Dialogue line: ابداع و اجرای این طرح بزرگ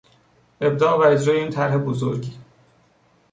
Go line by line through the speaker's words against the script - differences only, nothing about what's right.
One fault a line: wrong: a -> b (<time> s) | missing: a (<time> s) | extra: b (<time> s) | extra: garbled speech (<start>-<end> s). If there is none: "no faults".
no faults